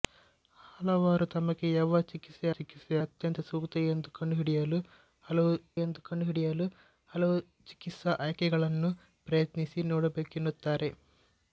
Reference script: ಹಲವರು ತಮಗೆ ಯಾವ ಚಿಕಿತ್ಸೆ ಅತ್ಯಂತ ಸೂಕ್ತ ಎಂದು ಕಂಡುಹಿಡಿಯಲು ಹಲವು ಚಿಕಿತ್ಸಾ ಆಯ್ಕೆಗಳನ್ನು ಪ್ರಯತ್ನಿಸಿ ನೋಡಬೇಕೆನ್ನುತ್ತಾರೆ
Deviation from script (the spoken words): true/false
true